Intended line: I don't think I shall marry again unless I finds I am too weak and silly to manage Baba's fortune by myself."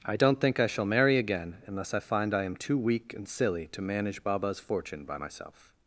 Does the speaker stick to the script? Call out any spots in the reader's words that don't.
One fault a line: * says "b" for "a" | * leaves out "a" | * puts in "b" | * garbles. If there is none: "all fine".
* says "find" for "finds"